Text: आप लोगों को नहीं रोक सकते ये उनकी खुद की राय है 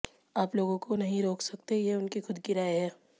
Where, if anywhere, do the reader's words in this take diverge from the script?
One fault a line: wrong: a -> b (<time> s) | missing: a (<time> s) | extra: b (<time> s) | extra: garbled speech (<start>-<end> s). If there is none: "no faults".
no faults